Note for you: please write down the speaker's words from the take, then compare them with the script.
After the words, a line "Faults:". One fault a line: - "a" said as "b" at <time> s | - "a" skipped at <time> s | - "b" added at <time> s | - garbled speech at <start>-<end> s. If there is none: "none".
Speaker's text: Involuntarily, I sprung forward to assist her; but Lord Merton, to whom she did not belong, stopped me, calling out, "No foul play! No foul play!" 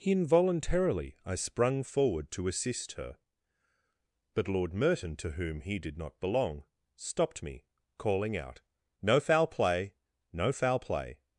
Involuntarily, I sprung forward to assist her; but Lord Merton, to whom he did not belong, stopped me, calling out, "No foul play! No foul play!"
Faults:
- "she" said as "he" at 5.6 s